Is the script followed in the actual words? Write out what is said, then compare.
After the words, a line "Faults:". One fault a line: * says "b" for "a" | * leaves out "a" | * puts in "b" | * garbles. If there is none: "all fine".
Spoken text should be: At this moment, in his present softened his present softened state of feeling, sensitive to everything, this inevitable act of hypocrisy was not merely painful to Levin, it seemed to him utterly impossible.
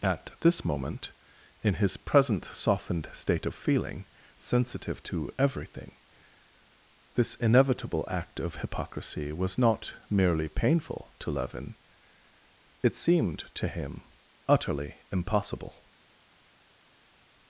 At this moment, in his present softened state of feeling, sensitive to everything, this inevitable act of hypocrisy was not merely painful to Levin, it seemed to him utterly impossible.
Faults:
* leaves out "his present softened"